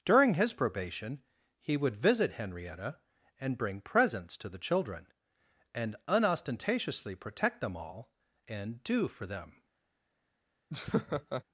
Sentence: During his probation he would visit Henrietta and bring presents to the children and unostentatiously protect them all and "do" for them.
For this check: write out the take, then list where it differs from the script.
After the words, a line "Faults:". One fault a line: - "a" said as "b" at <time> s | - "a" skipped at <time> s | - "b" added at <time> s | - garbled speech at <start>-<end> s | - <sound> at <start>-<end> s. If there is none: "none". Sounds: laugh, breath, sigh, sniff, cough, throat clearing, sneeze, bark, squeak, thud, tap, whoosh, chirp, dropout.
During his probation he would visit Henrietta and bring presents to the children and unostentatiously protect them all and "do" for them.
Faults:
- laugh at 10.7-11.4 s